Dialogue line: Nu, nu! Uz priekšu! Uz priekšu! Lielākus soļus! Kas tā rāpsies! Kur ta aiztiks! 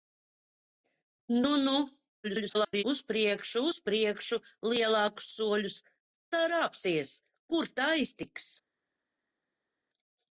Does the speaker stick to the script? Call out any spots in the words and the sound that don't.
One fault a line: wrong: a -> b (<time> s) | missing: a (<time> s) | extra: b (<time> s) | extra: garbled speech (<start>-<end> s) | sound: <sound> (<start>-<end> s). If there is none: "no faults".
extra: garbled speech (2.2-2.8 s)
missing: Kas (5.8 s)